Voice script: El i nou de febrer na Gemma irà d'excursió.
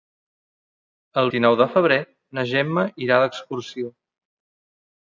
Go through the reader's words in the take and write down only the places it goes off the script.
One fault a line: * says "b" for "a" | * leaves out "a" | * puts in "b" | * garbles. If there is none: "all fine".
all fine